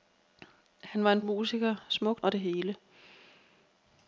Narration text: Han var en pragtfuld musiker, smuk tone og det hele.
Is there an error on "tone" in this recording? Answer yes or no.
yes